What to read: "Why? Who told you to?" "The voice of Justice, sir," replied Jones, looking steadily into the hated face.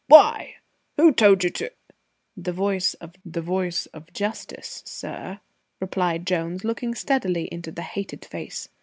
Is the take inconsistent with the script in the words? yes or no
yes